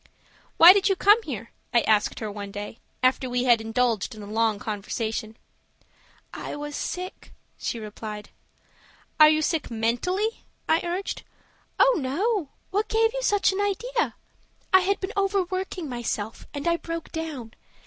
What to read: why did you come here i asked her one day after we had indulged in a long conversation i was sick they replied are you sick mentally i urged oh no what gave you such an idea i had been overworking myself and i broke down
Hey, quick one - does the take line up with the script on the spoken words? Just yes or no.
no